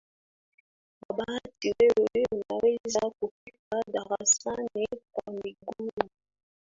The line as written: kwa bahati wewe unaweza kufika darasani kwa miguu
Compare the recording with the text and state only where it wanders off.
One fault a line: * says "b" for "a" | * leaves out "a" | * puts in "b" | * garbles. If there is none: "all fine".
all fine